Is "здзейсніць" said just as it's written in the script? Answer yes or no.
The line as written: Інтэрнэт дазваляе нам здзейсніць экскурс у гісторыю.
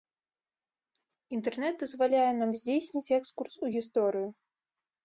yes